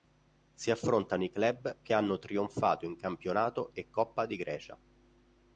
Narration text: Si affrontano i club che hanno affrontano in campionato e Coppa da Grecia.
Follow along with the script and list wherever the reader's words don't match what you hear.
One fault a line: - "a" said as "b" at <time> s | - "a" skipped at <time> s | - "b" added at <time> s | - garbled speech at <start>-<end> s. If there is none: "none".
- "affrontano" said as "trionfato" at 2.2 s
- "da" said as "di" at 4.2 s